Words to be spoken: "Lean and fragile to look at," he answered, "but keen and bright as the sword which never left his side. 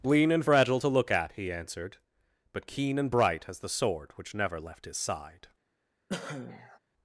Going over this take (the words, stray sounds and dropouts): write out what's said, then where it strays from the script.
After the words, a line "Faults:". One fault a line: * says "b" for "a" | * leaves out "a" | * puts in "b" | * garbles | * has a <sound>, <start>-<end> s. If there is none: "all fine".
"Lean and fragile to look at," he answered, "but keen and bright as the sword which never left his side.
Faults:
* has a cough, 6.1-6.8 s